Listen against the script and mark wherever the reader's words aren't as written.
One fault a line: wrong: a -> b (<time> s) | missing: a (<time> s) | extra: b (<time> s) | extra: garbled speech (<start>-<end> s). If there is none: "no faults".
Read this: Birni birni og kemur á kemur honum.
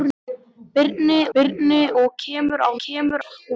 no faults